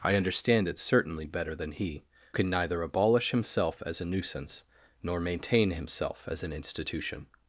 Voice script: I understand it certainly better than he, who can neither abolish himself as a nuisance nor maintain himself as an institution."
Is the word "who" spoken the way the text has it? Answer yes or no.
no